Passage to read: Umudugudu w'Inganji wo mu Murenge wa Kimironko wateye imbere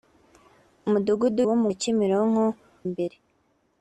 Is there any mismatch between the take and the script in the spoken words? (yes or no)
yes